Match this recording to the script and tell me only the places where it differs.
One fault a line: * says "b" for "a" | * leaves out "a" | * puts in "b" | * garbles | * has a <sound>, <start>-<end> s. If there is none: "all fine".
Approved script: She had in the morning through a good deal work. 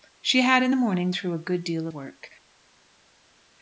all fine